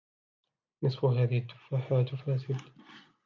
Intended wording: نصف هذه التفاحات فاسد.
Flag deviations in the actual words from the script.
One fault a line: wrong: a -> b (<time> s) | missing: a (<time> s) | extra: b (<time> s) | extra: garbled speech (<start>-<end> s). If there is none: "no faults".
no faults